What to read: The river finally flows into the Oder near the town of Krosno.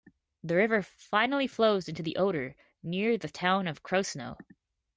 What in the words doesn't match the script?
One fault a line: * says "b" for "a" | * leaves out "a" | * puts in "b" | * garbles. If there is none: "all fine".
all fine